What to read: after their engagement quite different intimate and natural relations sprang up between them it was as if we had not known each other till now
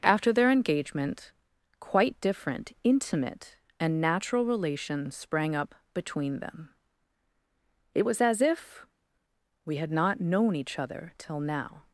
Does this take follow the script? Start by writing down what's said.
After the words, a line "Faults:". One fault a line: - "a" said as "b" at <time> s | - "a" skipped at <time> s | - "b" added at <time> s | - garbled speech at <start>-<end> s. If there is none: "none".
after their engagement quite different intimate and natural relations sprang up between them it was as if we had not known each other till now
Faults:
none